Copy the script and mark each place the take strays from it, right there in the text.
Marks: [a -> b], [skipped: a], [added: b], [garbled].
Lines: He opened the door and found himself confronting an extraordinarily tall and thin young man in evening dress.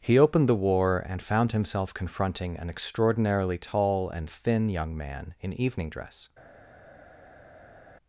He opened the [door -> war] and found himself confronting an extraordinarily tall and thin young man in evening dress.